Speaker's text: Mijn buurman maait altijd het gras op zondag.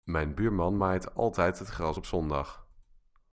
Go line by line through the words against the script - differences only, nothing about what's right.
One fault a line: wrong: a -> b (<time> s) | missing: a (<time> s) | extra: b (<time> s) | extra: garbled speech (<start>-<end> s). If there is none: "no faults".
no faults